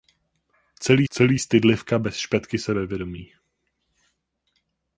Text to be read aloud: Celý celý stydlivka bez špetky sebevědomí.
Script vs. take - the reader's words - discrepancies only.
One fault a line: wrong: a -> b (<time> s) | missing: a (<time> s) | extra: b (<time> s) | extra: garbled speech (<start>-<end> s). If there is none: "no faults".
no faults